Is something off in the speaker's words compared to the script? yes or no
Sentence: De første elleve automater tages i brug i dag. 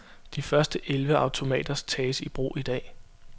no